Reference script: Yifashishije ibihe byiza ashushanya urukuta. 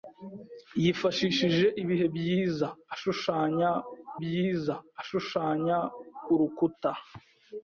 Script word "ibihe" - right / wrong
right